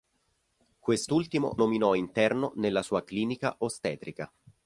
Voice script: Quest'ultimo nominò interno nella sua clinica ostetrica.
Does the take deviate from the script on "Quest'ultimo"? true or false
false